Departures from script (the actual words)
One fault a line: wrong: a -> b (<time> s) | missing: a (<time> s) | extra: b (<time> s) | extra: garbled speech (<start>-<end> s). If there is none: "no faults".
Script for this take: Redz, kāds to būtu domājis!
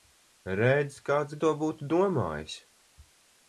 no faults